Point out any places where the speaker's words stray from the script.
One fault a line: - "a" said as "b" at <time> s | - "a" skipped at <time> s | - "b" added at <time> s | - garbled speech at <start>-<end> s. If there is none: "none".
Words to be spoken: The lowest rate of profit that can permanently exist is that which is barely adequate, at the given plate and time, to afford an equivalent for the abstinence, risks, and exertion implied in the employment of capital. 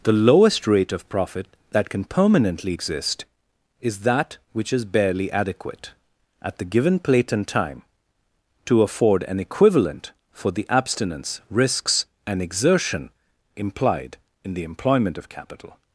none